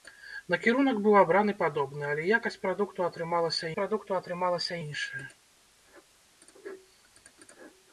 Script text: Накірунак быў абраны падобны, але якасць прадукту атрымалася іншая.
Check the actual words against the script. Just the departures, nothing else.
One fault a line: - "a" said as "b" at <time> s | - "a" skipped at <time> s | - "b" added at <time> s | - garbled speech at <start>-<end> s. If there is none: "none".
- "прадукту атрымалася" added at 3.8 s